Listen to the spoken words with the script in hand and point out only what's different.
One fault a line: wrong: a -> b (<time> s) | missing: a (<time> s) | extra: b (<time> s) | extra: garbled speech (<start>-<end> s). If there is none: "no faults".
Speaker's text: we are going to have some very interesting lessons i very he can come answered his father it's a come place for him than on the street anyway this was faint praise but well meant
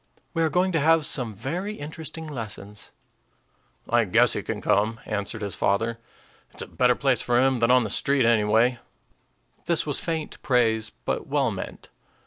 wrong: very -> guess (4.1 s)
wrong: come -> better (6.7 s)